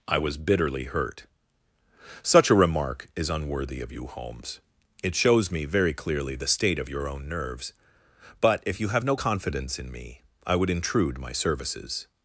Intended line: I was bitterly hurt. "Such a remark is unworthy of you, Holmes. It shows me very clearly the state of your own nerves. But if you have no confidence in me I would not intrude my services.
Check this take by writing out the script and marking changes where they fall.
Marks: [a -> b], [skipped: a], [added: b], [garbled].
I was bitterly hurt. "Such a remark is unworthy of you, Holmes. It shows me very clearly the state of your own nerves. But if you have no confidence in me I would [skipped: not] intrude my services.